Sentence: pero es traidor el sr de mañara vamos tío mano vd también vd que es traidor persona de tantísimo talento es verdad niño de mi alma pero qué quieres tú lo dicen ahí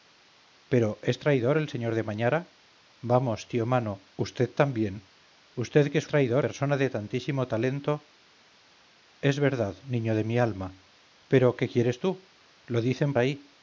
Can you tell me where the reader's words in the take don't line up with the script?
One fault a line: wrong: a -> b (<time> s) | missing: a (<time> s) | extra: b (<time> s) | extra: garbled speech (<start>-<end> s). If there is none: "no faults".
no faults